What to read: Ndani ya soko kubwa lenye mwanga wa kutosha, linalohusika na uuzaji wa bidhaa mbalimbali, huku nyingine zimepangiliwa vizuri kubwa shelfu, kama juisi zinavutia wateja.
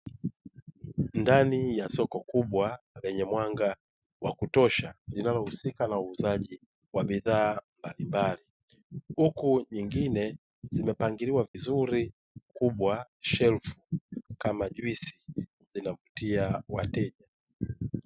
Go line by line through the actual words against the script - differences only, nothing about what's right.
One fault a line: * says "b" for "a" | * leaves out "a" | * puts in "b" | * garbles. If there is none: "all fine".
all fine